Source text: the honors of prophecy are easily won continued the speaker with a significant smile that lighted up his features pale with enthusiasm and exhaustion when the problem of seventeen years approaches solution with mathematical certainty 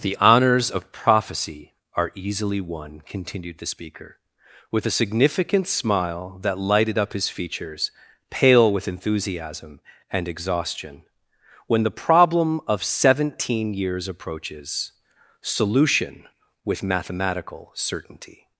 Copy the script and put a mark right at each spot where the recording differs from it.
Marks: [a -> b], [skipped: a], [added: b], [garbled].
the honors of prophecy are easily won continued the speaker with a significant smile that lighted up his features pale with enthusiasm and exhaustion when the problem of seventeen years approaches solution with mathematical certainty